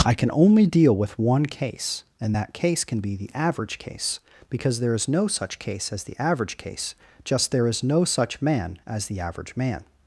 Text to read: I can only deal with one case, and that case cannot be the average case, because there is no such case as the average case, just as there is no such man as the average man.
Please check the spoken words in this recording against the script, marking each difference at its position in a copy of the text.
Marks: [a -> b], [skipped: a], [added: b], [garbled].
I can only deal with one case, and that case [cannot -> can] be the average case, because there is no such case as the average case, just [skipped: as] there is no such man as the average man.